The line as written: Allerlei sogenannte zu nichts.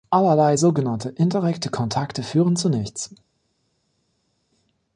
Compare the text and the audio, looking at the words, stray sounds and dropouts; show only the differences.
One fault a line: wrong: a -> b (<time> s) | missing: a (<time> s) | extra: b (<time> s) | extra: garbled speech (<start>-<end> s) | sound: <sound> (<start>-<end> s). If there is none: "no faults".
extra: indirekte Kontakte führen (1.1 s)